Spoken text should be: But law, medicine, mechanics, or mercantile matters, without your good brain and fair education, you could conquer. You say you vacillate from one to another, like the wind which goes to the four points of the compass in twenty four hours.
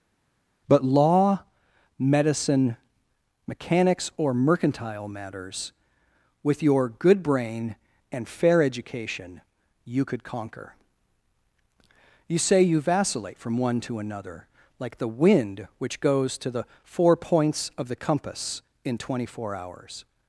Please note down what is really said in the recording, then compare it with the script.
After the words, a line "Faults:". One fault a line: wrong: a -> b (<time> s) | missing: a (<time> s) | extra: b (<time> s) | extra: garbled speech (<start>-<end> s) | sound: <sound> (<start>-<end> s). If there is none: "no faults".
But law, medicine, mechanics, or mercantile matters, with your good brain and fair education, you could conquer. You say you vacillate from one to another, like the wind which goes to the four points of the compass in twenty four hours.
Faults:
wrong: without -> with (6.4 s)